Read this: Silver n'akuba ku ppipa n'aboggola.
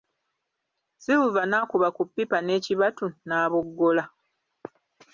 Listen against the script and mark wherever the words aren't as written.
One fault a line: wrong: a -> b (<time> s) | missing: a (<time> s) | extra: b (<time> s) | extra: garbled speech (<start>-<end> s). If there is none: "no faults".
extra: n'ekibatu (2.4 s)